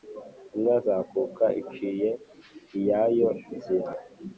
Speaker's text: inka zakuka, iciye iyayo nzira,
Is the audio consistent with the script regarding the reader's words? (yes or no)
yes